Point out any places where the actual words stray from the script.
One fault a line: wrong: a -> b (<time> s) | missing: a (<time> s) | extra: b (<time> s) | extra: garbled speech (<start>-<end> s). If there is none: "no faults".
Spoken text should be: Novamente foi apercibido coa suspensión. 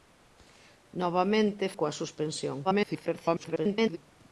missing: foi apercibido (1.6 s)
extra: garbled speech (2.6-4.0 s)